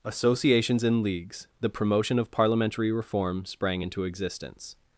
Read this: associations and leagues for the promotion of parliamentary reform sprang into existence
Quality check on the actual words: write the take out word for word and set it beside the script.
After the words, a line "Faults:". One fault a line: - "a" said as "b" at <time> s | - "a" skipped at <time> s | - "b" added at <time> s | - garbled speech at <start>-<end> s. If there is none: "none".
associations and leagues the promotion of parliamentary reform sprang into existence
Faults:
- "for" skipped at 1.5 s